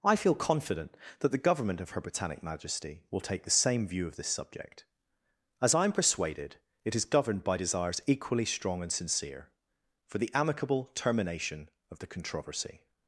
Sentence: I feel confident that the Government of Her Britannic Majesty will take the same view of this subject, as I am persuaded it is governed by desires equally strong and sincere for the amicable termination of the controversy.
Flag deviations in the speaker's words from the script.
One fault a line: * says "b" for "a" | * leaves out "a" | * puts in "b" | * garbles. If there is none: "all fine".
all fine